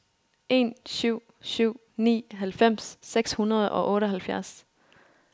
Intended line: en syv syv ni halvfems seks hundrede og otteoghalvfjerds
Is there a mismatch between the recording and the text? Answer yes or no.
no